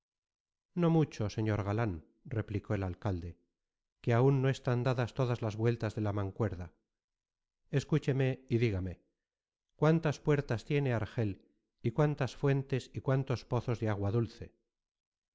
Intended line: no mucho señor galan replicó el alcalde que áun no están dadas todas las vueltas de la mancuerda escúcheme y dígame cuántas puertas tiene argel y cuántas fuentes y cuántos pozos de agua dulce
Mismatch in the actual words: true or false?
false